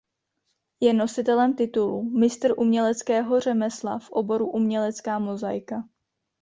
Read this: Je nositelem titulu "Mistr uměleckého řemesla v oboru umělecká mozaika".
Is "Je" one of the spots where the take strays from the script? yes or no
no